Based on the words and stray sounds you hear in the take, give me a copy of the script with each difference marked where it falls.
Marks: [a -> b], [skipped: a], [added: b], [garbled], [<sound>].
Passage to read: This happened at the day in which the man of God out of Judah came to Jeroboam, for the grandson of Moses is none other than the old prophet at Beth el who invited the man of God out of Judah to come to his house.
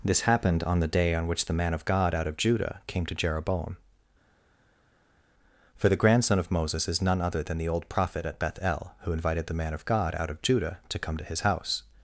This happened [at -> on] the day [in -> on] which the man of God out of Judah came to Jeroboam, for the grandson of Moses is none other than the old prophet at Beth el who invited the man of God out of Judah to come to his house.